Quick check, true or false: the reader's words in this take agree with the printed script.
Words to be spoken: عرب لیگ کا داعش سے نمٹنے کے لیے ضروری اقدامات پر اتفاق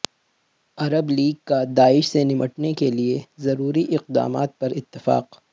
true